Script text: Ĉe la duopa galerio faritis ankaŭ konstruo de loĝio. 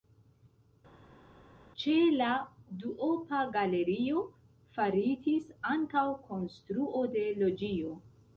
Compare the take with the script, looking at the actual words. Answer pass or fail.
pass